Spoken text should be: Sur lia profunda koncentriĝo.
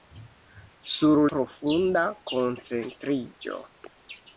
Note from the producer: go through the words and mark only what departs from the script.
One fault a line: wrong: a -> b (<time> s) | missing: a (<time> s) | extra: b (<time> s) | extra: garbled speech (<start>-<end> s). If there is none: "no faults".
missing: lia (1.2 s)